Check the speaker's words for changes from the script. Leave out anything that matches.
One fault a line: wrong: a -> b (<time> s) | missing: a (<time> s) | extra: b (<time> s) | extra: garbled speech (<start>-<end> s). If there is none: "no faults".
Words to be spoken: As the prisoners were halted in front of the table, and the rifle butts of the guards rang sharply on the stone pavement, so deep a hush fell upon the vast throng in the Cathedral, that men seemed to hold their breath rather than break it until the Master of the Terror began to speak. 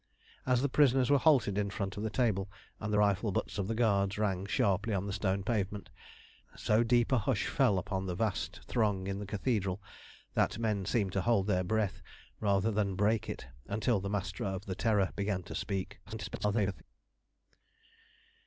extra: garbled speech (16.1-16.8 s)